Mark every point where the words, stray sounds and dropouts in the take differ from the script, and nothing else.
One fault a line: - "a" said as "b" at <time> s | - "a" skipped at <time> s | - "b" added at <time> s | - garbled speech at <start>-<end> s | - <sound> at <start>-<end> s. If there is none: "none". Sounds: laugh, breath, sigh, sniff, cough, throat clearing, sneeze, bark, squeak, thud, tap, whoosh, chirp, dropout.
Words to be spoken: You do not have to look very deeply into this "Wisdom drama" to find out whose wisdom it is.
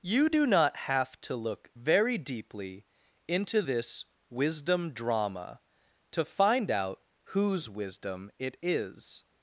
none